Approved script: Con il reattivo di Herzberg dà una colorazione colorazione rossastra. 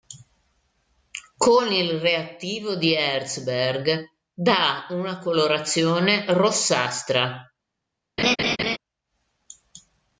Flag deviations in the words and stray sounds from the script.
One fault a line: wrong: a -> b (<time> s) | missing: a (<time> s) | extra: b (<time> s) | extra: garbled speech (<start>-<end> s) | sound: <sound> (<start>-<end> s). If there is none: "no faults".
missing: colorazione (6.2 s)
sound: laugh (8.2-8.8 s)